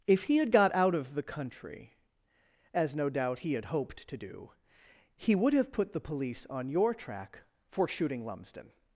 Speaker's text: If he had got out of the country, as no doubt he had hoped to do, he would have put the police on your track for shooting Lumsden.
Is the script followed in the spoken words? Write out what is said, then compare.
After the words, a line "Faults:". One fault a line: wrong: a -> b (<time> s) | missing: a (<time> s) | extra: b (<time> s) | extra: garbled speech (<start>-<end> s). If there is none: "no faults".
If he had got out of the country, as no doubt he had hoped to do, he would have put the police on your track for shooting Lumsden.
Faults:
no faults